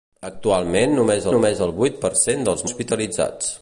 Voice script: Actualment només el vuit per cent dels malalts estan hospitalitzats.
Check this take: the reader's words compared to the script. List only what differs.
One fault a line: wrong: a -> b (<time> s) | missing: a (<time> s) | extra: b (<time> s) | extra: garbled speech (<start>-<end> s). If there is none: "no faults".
extra: només (1.3 s)
missing: malalts estan (2.7 s)